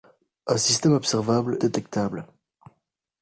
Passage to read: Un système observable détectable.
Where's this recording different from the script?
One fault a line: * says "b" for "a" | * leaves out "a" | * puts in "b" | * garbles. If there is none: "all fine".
all fine